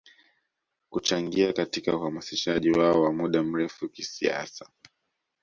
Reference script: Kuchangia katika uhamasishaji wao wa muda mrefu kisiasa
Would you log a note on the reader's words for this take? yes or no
no